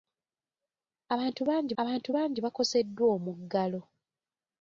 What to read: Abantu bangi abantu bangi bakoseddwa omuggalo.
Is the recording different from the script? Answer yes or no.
no